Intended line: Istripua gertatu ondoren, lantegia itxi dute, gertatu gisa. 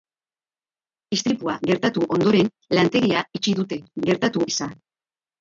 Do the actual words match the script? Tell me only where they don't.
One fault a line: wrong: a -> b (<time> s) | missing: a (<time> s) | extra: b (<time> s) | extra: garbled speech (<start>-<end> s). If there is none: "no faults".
no faults